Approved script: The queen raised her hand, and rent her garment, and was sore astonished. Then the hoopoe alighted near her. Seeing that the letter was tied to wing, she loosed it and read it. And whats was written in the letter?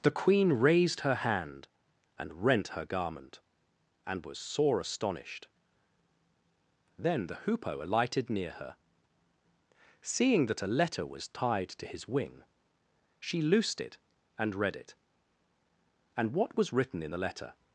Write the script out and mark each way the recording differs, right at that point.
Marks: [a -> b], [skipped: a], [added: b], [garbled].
The queen raised her hand, and rent her garment, and was sore astonished. Then the hoopoe alighted near her. Seeing that [the -> a] letter was tied to [added: his] wing, she loosed it and read it. And [whats -> what] was written in the letter?